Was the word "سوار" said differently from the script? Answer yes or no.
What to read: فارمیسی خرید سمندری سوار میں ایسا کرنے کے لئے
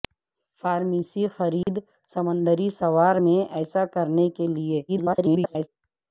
no